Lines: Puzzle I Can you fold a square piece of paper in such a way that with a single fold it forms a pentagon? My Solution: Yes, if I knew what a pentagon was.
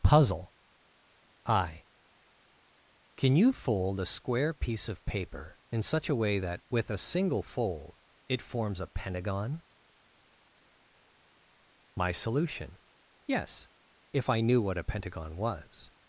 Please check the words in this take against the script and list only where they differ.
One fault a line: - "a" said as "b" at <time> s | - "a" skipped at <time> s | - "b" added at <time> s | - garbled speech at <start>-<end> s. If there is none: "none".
none